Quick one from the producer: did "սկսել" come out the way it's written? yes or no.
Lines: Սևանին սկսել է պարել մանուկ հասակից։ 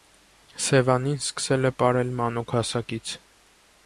yes